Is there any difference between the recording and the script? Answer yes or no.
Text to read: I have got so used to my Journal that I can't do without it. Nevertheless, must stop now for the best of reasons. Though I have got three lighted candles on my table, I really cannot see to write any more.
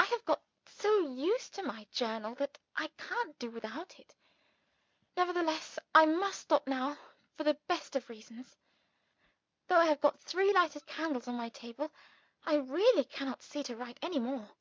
yes